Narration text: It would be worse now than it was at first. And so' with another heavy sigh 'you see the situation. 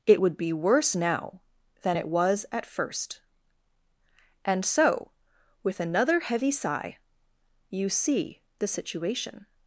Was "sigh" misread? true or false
false